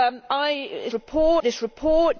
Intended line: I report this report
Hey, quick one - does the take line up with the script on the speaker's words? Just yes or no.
yes